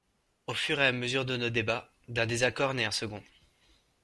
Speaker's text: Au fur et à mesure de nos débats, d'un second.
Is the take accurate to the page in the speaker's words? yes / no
no